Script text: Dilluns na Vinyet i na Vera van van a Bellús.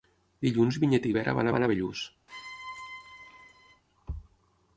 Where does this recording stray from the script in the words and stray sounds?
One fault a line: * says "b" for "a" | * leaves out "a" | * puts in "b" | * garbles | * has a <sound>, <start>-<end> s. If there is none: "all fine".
* has a squeak, 2.3-3.8 s